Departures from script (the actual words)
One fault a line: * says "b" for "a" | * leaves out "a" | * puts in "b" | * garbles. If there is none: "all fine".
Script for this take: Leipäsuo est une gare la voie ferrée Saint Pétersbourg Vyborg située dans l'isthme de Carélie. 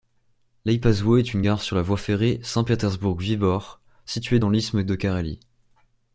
* puts in "sur"